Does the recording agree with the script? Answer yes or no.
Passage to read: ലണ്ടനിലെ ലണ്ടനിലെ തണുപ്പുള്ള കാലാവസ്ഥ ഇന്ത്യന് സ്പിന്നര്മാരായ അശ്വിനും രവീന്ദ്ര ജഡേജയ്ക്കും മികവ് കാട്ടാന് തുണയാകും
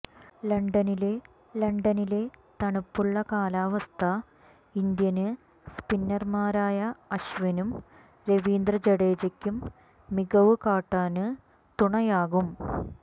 yes